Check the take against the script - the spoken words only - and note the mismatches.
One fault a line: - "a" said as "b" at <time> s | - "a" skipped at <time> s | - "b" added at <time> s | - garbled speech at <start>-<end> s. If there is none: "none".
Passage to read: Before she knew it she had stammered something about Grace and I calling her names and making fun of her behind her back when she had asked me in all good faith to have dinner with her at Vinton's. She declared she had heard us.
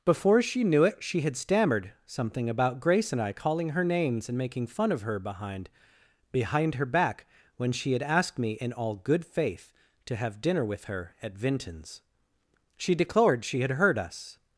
- "behind" added at 6.3 s